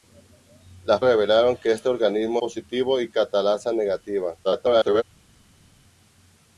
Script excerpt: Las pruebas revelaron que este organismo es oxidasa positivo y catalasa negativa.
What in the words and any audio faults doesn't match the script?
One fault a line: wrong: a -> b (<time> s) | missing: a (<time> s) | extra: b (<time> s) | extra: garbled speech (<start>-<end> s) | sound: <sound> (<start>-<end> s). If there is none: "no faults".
missing: pruebas (1.0 s)
missing: es oxidasa (2.4 s)
extra: garbled speech (4.4-5.0 s)